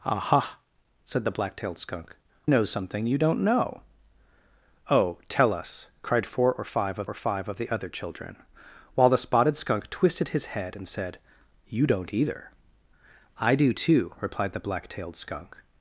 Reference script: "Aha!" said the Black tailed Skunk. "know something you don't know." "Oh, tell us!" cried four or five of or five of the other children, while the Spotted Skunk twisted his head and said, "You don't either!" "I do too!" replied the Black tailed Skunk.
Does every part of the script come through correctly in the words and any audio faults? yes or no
yes